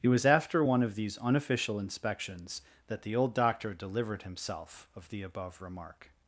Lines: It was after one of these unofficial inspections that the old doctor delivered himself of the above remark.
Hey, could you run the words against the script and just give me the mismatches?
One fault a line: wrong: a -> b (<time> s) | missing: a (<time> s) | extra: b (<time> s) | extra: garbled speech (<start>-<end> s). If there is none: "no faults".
no faults